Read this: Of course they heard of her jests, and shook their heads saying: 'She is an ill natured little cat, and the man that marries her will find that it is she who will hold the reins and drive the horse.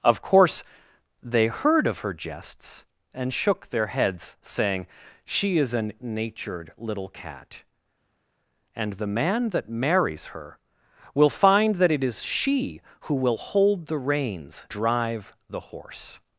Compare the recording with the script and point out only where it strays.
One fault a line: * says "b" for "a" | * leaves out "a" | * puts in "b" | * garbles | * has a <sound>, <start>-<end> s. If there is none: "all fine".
* leaves out "ill"
* leaves out "and"